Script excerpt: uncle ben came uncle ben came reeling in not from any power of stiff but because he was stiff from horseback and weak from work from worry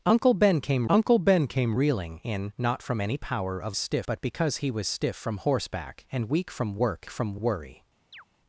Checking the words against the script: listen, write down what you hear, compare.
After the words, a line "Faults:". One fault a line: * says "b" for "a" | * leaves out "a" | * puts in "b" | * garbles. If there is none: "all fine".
uncle ben came uncle ben came reeling in not from any power of stiff but because he was stiff from horseback and weak from work from worry
Faults:
all fine